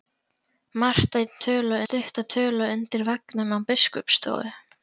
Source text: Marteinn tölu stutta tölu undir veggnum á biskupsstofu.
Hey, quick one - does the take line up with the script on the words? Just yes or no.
yes